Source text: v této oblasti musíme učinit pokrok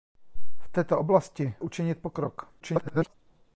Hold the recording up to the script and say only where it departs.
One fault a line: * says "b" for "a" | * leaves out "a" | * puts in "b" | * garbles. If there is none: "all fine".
* leaves out "musíme"
* garbles